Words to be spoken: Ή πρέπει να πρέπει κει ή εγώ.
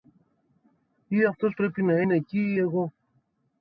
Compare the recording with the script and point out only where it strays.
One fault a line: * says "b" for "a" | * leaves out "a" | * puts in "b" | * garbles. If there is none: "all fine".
* puts in "αυτός"
* says "είναι" for "πρέπει"